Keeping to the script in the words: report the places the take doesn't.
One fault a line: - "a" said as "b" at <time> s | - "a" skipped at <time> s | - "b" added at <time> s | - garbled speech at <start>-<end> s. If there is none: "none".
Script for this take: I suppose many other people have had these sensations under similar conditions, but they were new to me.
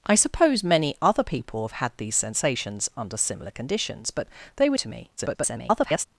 - "new" skipped at 4.8 s
- garbled speech at 5.2-6.1 s